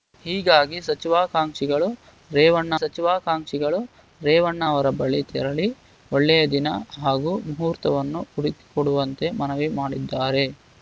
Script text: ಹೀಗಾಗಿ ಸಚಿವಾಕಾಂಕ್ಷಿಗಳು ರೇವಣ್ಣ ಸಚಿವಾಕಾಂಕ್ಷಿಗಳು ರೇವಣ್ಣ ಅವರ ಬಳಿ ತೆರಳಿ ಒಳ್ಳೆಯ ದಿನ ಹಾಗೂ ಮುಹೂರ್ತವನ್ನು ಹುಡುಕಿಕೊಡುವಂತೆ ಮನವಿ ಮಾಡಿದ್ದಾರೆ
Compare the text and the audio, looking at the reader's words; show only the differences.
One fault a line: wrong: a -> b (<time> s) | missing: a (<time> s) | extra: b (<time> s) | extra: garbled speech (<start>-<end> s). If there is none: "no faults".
no faults